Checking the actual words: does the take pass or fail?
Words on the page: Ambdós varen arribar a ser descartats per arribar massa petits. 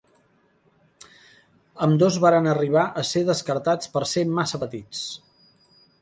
fail